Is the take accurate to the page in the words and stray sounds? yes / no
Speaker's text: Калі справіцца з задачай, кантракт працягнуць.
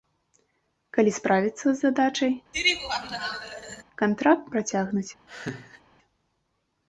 no